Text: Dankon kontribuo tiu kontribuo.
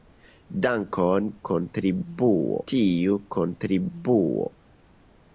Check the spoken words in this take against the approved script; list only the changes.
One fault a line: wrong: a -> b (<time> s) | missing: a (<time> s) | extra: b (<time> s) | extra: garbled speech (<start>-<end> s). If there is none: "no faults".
no faults